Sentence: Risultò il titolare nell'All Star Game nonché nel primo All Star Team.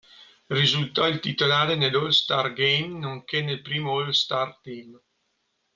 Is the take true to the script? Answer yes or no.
yes